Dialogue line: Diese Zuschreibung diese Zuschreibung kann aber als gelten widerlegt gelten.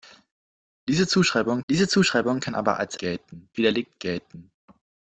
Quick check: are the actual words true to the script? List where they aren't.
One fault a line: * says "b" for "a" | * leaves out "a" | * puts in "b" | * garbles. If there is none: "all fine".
all fine